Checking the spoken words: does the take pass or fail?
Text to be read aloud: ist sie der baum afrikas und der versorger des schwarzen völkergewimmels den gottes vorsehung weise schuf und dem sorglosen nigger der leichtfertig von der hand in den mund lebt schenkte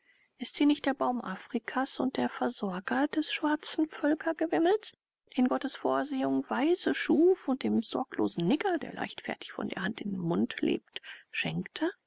fail